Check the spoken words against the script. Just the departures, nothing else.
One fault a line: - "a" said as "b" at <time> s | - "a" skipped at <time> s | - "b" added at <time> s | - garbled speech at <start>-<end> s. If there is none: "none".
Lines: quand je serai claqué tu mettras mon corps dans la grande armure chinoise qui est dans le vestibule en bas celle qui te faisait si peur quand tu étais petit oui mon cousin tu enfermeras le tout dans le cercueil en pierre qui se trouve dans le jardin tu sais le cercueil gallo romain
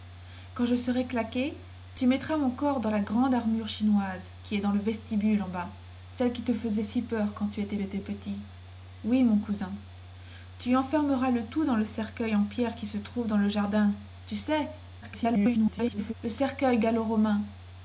- "étais" added at 7.8 s
- garbled speech at 15.0-16.1 s